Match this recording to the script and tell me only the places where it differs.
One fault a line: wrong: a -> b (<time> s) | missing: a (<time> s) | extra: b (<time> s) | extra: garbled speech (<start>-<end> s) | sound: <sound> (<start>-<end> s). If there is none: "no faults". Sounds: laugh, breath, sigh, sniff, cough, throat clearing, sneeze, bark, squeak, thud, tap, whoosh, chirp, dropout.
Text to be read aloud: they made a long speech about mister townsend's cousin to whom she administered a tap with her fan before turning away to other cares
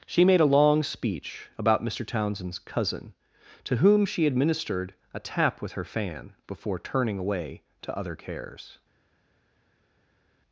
wrong: they -> she (0.1 s)